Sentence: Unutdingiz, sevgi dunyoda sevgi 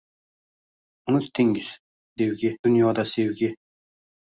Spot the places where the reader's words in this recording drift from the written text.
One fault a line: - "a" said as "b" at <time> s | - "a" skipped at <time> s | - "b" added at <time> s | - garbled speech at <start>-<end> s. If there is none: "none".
none